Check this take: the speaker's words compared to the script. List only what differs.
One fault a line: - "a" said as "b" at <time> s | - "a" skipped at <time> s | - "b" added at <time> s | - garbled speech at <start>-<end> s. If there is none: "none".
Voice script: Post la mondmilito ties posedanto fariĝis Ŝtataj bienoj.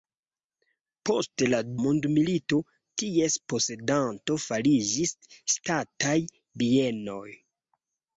none